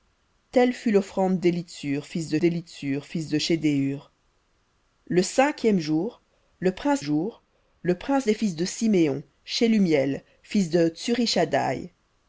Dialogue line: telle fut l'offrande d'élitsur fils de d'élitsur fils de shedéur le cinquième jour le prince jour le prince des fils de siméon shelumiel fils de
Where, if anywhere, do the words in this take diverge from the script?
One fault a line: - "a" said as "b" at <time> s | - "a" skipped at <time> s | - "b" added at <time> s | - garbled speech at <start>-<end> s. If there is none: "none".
none